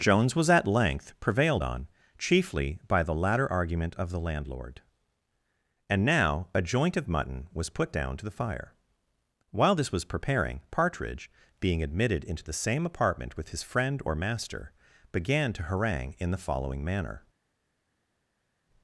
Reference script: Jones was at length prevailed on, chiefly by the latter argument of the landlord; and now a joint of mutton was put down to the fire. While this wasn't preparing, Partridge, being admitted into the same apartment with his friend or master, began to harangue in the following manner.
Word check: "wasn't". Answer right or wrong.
wrong